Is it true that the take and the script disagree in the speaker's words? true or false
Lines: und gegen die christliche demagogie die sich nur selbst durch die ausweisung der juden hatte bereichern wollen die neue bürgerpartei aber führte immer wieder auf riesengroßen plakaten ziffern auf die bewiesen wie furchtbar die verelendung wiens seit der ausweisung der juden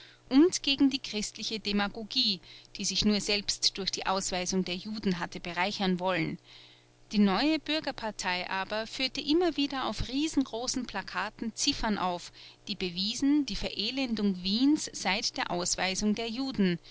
true